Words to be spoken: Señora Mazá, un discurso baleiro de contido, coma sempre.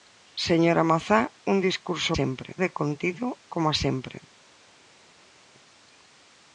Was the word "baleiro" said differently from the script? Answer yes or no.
yes